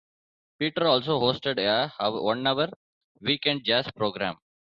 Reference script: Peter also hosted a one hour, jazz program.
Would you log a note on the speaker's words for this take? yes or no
yes